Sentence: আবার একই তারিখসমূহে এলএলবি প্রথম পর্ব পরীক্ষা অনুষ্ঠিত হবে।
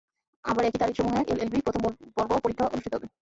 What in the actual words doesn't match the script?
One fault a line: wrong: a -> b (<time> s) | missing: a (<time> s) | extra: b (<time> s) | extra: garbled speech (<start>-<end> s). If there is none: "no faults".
no faults